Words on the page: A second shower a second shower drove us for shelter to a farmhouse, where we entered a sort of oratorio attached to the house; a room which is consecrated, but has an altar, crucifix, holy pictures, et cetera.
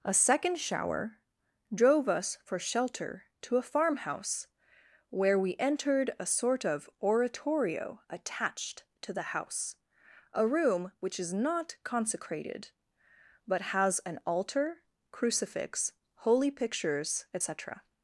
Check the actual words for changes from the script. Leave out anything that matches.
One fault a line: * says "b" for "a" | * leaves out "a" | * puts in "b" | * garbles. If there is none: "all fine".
* leaves out "a second shower"
* puts in "not"